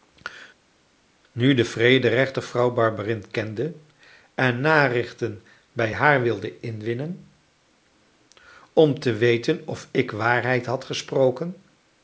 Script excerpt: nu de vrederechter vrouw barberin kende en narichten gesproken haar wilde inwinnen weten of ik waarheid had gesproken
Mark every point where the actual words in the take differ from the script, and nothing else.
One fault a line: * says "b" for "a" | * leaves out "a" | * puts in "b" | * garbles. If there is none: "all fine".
* says "bij" for "gesproken"
* puts in "om te"